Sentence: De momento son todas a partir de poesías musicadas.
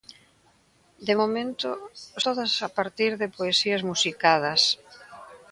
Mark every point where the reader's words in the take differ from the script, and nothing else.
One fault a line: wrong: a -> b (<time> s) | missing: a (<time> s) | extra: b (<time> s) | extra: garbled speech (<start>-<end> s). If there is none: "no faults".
missing: son (1.7 s)